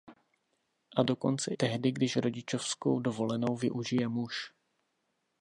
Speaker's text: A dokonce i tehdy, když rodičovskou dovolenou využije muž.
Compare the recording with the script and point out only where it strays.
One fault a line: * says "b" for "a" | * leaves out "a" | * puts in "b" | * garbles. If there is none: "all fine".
* leaves out "i"